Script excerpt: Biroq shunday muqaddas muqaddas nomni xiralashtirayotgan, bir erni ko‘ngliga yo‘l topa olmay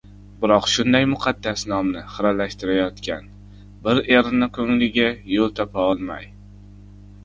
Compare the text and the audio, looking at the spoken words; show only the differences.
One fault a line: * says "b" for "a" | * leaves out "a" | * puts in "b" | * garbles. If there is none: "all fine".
* leaves out "muqaddas"